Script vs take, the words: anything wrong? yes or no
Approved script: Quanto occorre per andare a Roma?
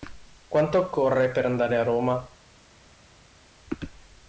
no